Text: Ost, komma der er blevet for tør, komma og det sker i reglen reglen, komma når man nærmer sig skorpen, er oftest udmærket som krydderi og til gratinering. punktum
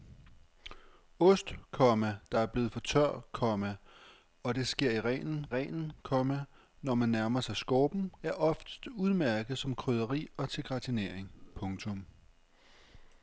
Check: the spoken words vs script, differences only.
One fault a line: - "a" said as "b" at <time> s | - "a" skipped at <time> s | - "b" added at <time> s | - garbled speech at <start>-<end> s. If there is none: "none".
none